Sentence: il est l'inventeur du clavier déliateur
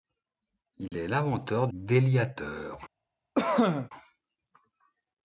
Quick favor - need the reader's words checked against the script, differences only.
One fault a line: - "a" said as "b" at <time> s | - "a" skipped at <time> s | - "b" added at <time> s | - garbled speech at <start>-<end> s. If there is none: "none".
- "du clavier" skipped at 1.7 s